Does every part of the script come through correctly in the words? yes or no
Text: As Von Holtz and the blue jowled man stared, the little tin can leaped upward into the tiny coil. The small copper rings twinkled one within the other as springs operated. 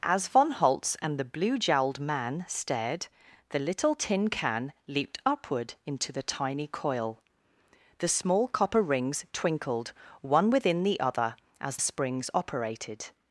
yes